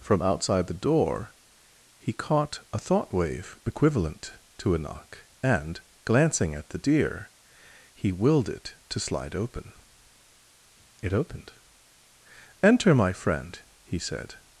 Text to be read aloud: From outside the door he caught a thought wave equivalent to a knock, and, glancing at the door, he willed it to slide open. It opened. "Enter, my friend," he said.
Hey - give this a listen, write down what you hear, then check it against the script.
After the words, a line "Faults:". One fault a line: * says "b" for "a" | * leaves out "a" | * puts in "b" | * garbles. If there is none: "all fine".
From outside the door he caught a thought wave equivalent to a knock, and, glancing at the deer, he willed it to slide open. It opened. "Enter, my friend," he said.
Faults:
* says "deer" for "door"